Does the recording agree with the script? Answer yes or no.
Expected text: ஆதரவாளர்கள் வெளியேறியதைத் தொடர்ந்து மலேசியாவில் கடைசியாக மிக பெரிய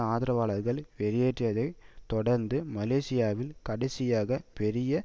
no